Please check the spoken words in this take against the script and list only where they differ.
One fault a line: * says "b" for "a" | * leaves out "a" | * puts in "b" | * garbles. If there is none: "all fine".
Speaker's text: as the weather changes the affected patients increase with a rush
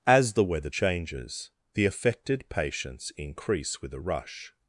all fine